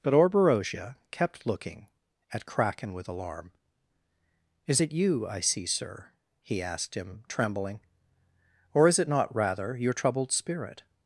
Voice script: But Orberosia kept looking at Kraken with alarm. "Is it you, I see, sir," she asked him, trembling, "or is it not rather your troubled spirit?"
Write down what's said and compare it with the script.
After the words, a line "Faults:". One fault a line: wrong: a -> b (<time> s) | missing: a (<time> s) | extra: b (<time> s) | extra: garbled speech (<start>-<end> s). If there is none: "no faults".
But Orberosia kept looking at Kraken with alarm. "Is it you, I see, sir," he asked him, trembling, "or is it not rather your troubled spirit?"
Faults:
wrong: she -> he (6.4 s)